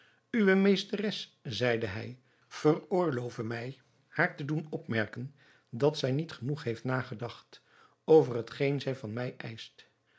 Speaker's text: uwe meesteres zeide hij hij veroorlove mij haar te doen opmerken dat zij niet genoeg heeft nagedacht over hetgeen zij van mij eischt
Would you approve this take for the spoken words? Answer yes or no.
no